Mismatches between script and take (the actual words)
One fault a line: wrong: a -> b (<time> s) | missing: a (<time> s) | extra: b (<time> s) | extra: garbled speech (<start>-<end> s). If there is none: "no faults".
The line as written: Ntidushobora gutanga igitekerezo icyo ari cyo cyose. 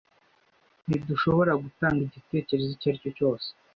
no faults